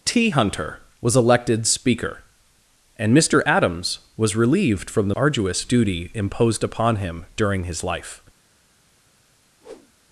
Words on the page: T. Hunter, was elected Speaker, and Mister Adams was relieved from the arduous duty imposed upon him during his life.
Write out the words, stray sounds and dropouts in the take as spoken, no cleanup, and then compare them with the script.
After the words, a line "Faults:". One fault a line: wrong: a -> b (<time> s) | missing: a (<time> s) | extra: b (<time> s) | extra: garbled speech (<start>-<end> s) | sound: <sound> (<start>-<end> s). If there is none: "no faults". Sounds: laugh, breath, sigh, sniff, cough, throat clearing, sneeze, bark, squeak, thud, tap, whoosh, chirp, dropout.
T. Hunter, was elected Speaker, and Mister Adams was relieved from the arduous duty imposed upon him during his life.
Faults:
sound: whoosh (9.6-9.9 s)